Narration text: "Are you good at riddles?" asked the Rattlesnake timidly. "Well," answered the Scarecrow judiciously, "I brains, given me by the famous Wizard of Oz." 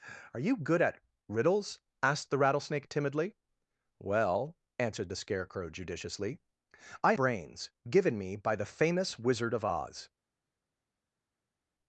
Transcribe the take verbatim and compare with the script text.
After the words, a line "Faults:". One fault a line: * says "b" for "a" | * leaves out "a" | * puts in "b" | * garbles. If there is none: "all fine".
"Are you good at riddles?" asked the Rattlesnake timidly. "Well," answered the Scarecrow judiciously, "I brains, given me by the famous Wizard of Oz."
Faults:
all fine